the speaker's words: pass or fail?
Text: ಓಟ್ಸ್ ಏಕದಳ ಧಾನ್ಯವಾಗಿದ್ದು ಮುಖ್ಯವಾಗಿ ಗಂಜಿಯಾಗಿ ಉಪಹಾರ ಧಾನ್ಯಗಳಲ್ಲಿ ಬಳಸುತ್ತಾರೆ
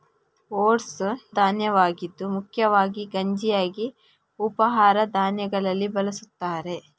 fail